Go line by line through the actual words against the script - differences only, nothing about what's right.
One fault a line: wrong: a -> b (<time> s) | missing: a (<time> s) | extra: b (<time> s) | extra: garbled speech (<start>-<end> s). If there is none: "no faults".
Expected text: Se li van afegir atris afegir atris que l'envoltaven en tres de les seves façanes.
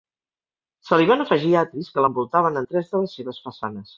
missing: afegir atris (1.9 s)